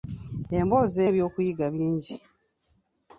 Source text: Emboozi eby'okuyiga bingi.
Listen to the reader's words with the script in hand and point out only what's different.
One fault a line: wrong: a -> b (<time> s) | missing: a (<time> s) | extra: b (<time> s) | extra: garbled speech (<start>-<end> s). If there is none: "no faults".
no faults